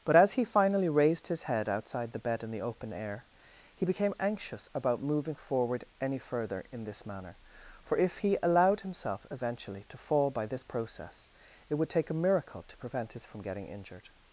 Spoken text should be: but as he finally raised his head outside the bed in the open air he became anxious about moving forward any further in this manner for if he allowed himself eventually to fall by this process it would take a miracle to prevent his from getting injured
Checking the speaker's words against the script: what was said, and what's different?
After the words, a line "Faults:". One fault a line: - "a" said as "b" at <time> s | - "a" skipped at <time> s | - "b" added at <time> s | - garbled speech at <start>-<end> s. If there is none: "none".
but as he finally raised his head outside the bed in the open air he became anxious about moving forward any further in this manner for if he allowed himself eventually to fall by this process it would take a miracle to prevent his from getting injured
Faults:
none